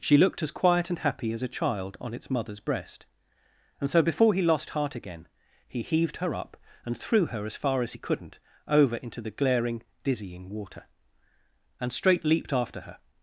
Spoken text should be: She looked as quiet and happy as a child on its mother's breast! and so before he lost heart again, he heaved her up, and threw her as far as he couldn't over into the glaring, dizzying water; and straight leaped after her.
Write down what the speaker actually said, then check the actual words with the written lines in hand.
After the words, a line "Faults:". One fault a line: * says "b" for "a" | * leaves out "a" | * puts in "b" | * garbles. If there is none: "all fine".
She looked as quiet and happy as a child on its mother's breast! and so before he lost heart again, he heaved her up, and threw her as far as he couldn't over into the glaring, dizzying water; and straight leaped after her.
Faults:
all fine